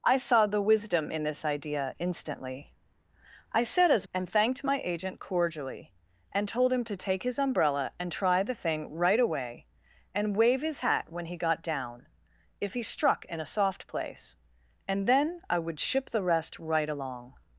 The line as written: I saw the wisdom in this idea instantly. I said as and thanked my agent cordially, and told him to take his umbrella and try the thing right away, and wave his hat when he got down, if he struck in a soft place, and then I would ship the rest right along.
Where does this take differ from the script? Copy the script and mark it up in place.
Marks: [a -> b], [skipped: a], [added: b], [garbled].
I saw the wisdom in this idea instantly. I said as and thanked my agent cordially, and told him to take his umbrella and try the thing right away, and wave his hat when he got down, if he struck in a soft place, and then I would ship the rest right along.